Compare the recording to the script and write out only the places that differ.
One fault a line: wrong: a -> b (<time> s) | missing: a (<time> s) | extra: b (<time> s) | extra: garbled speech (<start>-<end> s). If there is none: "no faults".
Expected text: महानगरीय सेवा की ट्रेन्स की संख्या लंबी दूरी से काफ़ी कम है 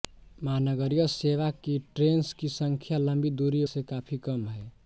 no faults